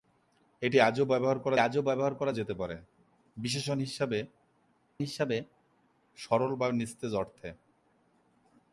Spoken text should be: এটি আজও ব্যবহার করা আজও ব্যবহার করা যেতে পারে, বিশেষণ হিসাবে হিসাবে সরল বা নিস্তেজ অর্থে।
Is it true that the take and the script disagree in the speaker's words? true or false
false